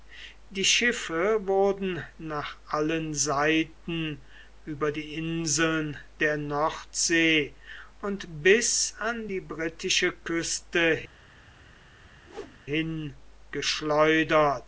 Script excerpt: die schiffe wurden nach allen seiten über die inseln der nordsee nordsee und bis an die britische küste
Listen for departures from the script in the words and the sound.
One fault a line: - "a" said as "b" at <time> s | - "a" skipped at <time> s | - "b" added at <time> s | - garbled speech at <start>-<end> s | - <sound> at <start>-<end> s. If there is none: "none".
- "nordsee" skipped at 7.5 s
- whoosh at 12.2-12.6 s